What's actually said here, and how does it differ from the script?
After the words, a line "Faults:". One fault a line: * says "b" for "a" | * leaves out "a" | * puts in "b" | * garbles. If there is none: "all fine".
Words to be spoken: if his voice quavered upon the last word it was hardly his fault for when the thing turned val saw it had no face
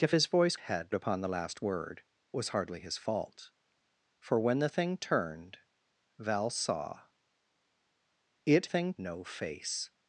if his voice had upon the last word was hardly his fault for when the thing turned val saw it thing no face
Faults:
* says "had" for "quavered"
* leaves out "it"
* says "thing" for "had"